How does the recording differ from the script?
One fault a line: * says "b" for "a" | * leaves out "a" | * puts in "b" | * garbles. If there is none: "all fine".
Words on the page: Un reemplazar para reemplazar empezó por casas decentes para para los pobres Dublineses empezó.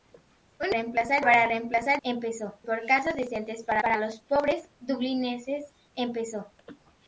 all fine